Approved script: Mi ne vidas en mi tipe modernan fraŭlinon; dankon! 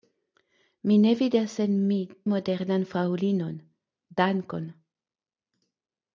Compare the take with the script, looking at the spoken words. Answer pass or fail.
fail